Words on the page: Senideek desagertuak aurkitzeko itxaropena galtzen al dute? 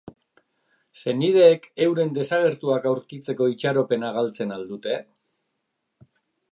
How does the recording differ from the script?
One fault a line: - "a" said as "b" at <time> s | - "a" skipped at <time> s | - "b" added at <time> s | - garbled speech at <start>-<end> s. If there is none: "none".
- "euren" added at 1.9 s